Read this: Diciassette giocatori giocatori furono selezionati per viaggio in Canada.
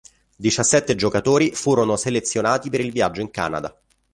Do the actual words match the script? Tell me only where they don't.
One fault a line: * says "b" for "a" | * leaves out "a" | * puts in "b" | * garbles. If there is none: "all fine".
* leaves out "giocatori"
* puts in "il"